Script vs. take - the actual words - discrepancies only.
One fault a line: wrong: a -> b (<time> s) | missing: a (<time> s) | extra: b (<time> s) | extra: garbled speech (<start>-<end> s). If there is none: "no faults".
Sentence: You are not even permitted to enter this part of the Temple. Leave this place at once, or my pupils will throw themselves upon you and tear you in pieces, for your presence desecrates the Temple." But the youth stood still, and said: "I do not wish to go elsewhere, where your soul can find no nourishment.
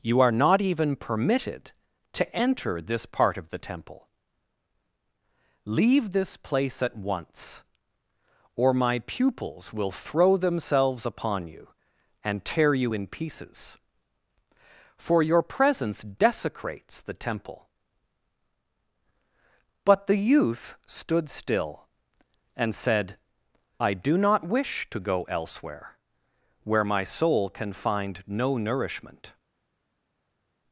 wrong: your -> my (26.8 s)